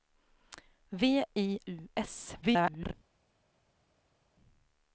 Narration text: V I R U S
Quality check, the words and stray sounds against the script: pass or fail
fail